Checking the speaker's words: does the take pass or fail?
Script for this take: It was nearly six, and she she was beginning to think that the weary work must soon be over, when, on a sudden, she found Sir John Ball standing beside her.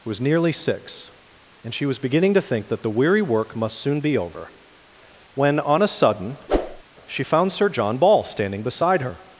fail